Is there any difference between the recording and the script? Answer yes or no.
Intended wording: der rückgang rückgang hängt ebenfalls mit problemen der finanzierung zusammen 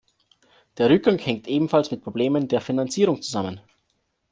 yes